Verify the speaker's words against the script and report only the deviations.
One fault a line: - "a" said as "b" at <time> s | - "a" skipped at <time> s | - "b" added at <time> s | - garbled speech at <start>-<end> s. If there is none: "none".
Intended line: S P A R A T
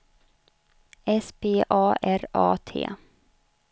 none